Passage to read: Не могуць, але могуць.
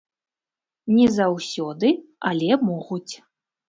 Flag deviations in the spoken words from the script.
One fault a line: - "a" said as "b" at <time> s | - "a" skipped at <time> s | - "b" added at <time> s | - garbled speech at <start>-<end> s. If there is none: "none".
- "могуць" said as "заўсёды" at 1.2 s